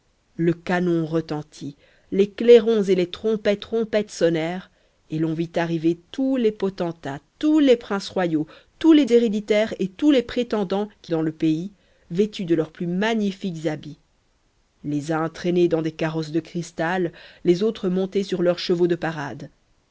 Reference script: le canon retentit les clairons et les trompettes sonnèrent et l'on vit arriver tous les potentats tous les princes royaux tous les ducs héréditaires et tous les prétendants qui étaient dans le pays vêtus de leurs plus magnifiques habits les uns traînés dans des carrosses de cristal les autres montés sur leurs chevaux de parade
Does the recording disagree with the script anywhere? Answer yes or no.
yes